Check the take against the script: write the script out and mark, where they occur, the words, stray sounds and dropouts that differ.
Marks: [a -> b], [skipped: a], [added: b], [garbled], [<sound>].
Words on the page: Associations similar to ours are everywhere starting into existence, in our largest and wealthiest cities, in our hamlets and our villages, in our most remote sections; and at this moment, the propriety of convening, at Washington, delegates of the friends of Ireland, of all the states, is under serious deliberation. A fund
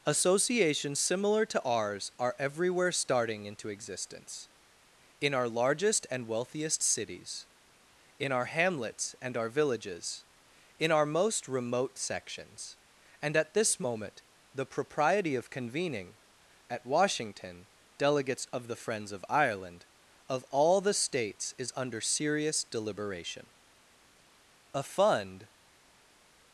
Associations similar to ours are everywhere starting into existence, in our largest and wealthiest cities, in our hamlets and our villages, in our most remote sections; and at this moment, the propriety of convening, at Washington, delegates of the friends of Ireland, of all the states, is under serious deliberation. A fund